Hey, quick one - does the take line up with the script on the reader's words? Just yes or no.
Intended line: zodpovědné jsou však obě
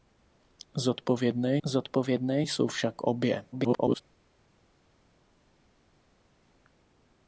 no